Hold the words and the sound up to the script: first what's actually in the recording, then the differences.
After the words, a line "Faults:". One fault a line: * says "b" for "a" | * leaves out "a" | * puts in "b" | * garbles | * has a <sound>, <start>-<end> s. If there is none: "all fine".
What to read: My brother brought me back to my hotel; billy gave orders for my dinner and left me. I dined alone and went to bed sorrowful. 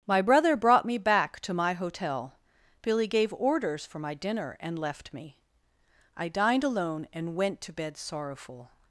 My brother brought me back to my hotel; billy gave orders for my dinner and left me. I dined alone and went to bed sorrowful.
Faults:
all fine